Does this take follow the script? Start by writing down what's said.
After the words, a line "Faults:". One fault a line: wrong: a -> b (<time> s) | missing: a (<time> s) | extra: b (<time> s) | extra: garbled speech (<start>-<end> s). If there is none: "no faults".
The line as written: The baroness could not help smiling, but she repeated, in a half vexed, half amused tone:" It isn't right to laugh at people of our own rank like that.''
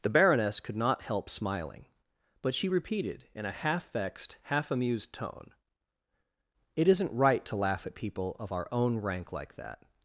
The baroness could not help smiling, but she repeated, in a half vexed, half amused tone:" It isn't right to laugh at people of our own rank like that.''
Faults:
no faults